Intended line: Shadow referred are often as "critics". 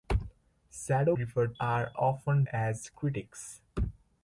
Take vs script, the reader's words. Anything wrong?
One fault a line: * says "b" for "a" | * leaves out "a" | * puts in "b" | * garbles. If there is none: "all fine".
all fine